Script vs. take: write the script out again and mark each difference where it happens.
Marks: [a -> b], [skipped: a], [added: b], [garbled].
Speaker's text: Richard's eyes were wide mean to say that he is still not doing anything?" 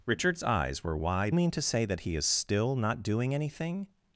Richard's eyes were wide mean to say that he is still not doing anything?"